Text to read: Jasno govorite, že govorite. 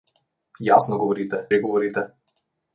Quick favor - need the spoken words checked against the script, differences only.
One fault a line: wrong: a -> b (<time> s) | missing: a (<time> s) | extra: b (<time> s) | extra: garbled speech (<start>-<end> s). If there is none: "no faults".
no faults